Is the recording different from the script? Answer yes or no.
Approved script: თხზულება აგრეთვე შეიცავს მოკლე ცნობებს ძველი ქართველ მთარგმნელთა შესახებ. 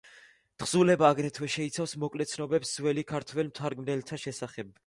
no